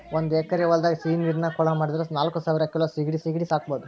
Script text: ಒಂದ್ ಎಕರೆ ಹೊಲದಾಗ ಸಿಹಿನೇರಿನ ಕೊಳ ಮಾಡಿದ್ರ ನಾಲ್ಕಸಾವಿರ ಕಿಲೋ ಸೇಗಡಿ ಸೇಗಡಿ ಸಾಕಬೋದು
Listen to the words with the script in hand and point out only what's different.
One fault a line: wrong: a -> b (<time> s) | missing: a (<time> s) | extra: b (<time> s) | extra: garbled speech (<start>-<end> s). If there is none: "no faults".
no faults